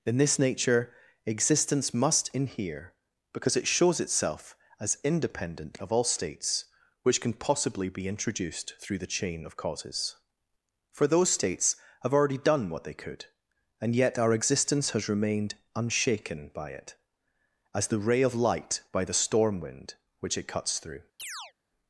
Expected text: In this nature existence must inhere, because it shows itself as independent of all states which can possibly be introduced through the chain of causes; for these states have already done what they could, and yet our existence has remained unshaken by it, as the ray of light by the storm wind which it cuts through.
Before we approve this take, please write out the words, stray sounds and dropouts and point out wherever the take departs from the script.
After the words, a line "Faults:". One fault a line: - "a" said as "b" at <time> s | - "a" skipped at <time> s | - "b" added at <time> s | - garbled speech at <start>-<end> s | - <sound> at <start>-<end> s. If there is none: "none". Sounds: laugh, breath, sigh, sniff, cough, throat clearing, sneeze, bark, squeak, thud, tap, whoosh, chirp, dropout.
In this nature existence must inhere, because it shows itself as independent of all states which can possibly be introduced through the chain of causes; for those states have already done what they could, and yet our existence has remained unshaken by it, as the ray of light by the storm wind which it cuts through.
Faults:
- "these" said as "those" at 11.1 s
- chirp at 21.2-21.5 s